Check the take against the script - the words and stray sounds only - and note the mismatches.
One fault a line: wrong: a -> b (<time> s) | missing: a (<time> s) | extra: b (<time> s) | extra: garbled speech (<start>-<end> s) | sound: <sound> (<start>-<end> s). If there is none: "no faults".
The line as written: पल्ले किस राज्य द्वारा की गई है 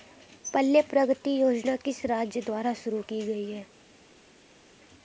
extra: प्रगति योजना (0.8 s)
extra: शुरू (2.7 s)